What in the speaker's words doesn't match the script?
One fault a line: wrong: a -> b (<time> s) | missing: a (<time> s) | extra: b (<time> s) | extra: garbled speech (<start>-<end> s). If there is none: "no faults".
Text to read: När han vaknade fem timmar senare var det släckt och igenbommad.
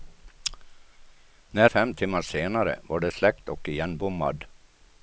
missing: han vaknade (1.7 s)